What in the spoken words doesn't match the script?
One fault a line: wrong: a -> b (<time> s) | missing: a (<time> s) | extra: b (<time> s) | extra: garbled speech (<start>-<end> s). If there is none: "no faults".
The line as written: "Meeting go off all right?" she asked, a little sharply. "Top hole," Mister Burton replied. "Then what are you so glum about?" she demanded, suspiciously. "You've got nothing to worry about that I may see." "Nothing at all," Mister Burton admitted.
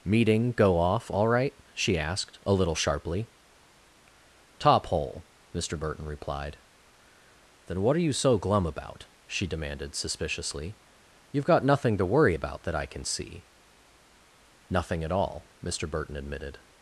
wrong: may -> can (12.9 s)